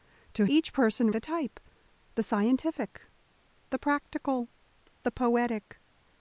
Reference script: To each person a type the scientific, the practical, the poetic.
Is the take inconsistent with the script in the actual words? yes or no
no